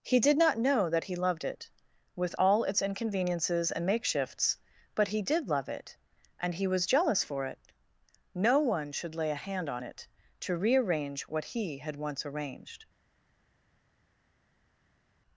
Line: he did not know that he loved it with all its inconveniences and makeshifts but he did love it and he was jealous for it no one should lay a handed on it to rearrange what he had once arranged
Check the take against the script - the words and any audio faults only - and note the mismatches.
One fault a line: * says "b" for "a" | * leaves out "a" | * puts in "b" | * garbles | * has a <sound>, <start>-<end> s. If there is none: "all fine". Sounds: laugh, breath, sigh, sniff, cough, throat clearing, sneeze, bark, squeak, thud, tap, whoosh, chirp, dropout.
* says "hand" for "handed"